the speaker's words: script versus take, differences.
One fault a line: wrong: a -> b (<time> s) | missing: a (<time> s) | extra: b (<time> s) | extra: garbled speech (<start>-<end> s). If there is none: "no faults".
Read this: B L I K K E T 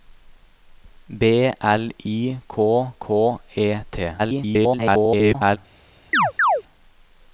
extra: garbled speech (4.2-5.6 s)